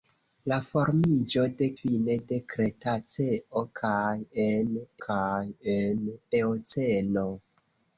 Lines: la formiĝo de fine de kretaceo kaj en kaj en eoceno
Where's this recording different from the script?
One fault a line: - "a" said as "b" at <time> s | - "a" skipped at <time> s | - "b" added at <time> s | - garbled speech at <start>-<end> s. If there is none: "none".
none